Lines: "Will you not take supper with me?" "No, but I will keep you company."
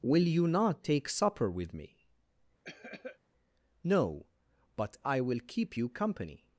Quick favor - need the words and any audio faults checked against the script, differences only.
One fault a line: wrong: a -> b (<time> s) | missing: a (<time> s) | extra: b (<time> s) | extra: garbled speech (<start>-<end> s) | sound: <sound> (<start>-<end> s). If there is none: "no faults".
sound: cough (2.6-3.2 s)